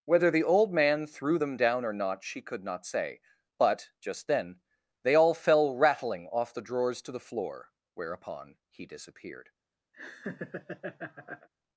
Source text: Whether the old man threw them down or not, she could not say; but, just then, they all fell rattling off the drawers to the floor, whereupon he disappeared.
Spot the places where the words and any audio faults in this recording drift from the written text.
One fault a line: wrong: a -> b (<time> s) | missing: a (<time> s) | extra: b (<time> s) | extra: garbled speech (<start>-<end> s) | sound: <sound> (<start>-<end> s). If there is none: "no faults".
sound: laugh (9.9-11.5 s)